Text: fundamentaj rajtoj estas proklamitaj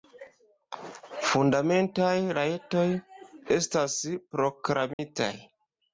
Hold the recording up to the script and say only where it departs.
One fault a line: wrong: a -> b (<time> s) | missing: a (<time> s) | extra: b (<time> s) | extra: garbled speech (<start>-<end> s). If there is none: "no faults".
no faults